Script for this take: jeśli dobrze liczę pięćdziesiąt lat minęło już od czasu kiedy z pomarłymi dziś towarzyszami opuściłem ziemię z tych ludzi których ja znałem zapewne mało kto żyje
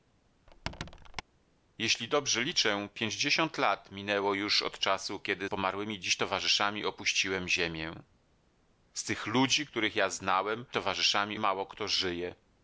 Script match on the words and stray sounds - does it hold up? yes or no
no